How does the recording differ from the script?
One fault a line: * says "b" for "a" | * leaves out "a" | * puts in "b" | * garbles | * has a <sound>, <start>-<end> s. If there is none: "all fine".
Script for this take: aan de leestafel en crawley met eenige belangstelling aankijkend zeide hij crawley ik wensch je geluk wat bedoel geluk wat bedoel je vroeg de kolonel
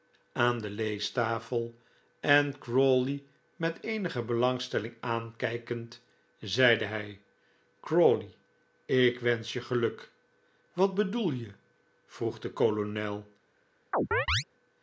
* leaves out "geluk wat bedoel"
* has a chirp, 13.9-14.4 s